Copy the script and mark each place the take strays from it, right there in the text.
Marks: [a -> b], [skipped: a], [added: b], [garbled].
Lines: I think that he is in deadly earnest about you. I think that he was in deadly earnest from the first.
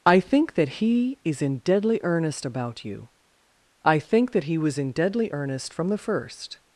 I think that he is in deadly earnest about you. I think that he was in deadly earnest from the first.